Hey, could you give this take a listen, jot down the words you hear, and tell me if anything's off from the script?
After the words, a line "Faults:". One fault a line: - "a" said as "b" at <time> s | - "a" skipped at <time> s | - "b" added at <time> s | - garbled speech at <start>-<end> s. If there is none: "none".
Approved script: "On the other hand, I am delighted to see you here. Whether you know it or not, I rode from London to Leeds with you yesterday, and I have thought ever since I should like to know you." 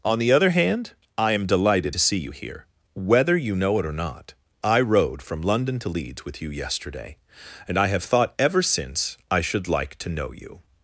"On the other hand, I am delighted to see you here. Whether you know it or not, I rode from London to Leeds with you yesterday, and I have thought ever since I should like to know you."
Faults:
none